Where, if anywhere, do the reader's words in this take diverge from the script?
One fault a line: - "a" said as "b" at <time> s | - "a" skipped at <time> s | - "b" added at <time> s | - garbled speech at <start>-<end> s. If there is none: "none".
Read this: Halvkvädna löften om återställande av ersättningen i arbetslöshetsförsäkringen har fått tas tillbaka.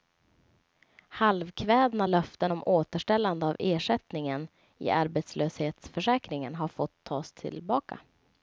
none